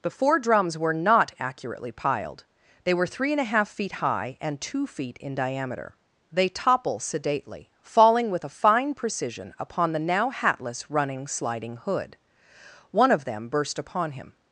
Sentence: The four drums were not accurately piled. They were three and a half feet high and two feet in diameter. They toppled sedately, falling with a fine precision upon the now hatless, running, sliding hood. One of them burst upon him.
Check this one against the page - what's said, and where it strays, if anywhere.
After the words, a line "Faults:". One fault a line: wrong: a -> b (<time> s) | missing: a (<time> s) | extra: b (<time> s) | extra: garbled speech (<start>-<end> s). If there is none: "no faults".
The four drums were not accurately piled. They were three and a half feet high and two feet in diameter. They topple sedately, falling with a fine precision upon the now hatless, running, sliding hood. One of them burst upon him.
Faults:
wrong: toppled -> topple (6.5 s)